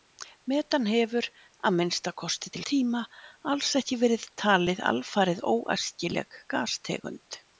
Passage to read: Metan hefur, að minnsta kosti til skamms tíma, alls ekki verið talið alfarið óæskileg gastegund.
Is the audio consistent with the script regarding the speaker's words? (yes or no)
no